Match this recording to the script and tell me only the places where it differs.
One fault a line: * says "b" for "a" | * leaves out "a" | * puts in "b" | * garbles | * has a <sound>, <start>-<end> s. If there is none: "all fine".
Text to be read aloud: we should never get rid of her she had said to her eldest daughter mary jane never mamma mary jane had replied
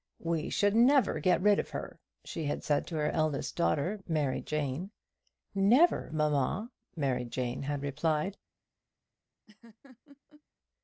* has a laugh, 9.5-10.4 s